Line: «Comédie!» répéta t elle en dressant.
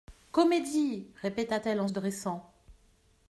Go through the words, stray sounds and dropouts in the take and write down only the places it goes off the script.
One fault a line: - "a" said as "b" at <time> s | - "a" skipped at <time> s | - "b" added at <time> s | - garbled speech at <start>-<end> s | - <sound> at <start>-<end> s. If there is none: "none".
none